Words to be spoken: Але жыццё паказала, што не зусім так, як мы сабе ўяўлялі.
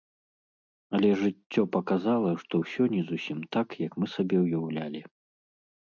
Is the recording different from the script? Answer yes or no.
yes